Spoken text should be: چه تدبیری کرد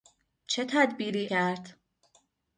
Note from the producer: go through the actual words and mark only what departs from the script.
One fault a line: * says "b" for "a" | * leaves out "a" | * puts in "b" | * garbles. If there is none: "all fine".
all fine